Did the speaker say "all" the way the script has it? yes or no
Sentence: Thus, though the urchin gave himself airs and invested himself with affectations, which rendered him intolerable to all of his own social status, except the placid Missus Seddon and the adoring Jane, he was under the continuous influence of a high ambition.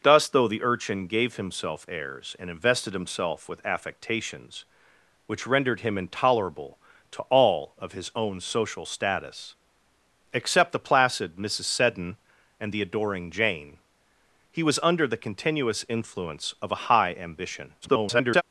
yes